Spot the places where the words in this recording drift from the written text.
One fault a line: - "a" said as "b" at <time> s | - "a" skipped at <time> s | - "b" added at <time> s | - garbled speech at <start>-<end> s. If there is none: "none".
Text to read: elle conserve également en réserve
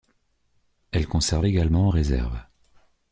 none